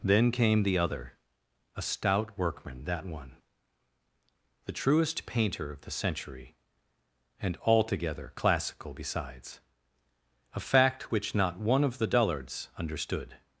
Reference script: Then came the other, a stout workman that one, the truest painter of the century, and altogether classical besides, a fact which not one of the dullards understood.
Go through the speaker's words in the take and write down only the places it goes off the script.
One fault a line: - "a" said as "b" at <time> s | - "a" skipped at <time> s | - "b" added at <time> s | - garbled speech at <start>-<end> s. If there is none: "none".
none